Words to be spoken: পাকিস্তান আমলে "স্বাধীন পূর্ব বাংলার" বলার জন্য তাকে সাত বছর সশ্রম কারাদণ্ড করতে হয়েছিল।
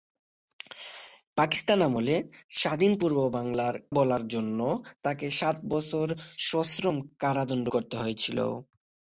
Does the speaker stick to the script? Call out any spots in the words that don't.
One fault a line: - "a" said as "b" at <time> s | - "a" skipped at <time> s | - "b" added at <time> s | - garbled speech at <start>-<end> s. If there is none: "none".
none